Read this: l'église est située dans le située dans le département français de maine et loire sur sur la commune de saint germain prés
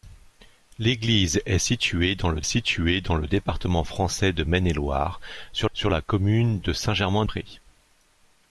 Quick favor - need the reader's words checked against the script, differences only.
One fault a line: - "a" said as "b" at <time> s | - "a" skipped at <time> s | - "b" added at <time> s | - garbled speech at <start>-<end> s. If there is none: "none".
none